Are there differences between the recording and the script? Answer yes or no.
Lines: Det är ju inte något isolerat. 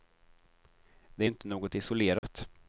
no